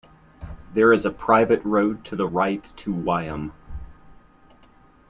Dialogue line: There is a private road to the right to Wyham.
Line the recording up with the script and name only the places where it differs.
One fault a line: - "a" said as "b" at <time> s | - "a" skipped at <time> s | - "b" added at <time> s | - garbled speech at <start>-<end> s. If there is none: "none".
none